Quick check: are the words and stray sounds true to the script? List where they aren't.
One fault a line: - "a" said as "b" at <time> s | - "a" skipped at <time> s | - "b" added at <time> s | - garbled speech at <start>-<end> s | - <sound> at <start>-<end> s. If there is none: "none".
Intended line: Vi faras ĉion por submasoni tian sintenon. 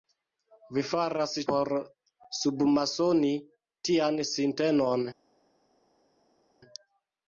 - "ĉion" skipped at 1.4 s